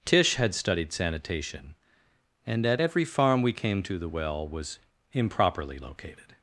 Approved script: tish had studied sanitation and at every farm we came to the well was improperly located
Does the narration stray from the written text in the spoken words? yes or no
no